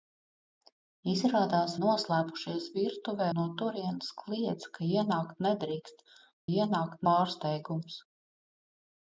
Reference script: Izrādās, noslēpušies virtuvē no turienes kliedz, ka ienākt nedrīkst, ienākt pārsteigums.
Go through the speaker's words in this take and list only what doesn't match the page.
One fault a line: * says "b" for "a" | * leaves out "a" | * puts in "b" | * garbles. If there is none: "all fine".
all fine